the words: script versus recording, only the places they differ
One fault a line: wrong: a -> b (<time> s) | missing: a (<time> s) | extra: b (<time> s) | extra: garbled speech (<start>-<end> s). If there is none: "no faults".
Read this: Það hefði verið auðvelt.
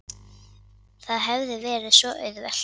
extra: svo (2.0 s)